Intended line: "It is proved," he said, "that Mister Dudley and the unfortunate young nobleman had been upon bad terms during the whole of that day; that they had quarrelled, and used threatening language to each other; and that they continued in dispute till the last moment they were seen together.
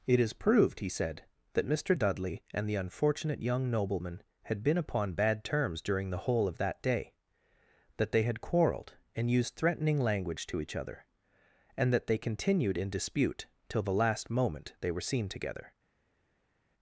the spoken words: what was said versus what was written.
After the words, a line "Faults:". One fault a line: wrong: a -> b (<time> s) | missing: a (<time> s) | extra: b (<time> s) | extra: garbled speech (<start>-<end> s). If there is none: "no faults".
"It is proved," he said, "that Mister Dudley and the unfortunate young nobleman had been upon bad terms during the whole of that day; that they had quarrelled, and used threatening language to each other; and that they continued in dispute till the last moment they were seen together.
Faults:
no faults